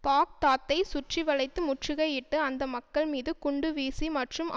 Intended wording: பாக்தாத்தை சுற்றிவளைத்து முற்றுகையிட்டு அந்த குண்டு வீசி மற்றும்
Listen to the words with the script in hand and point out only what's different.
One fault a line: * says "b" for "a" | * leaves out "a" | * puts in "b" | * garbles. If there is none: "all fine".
* puts in "மக்கள் மீது"